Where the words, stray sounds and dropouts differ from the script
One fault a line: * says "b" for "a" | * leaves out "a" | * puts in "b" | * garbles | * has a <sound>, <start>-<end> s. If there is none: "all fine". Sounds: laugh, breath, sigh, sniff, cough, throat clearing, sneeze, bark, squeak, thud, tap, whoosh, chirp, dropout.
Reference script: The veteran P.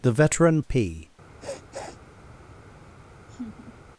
* has a sniff, 1.4-2.0 s
* has a laugh, 3.3-3.7 s